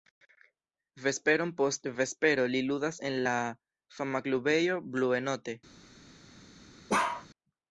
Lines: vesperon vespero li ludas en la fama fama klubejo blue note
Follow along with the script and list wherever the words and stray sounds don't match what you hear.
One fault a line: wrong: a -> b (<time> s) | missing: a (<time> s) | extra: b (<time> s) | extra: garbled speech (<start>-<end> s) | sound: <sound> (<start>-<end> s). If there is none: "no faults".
extra: post (1.6 s)
missing: fama (4.2 s)
sound: bark (6.9-7.3 s)